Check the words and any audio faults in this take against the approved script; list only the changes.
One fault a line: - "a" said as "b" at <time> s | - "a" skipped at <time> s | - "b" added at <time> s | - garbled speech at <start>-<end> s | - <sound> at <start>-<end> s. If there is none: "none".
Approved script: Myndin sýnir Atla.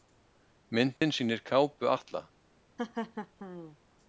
- dropout at 1.0-1.0 s
- "kápu" added at 1.5 s
- laugh at 2.8-3.8 s